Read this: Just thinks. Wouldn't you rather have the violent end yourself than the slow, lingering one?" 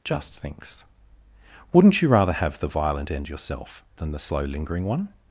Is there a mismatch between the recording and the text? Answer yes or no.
no